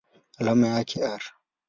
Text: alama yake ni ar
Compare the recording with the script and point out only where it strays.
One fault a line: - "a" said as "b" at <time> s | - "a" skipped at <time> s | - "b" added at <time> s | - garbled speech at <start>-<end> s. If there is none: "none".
- "ni" skipped at 1.0 s